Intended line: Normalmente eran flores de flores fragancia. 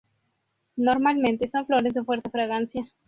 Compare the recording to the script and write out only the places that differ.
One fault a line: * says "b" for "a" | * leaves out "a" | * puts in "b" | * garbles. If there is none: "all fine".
* says "son" for "eran"
* says "fuerte" for "flores"